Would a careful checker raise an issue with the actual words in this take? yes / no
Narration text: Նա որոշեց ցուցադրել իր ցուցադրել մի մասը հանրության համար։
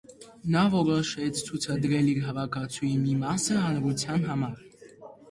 yes